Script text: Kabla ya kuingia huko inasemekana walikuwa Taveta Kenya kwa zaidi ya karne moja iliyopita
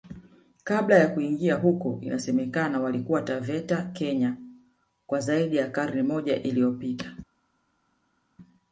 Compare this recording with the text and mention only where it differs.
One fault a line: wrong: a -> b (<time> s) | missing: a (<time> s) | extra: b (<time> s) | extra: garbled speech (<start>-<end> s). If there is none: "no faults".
no faults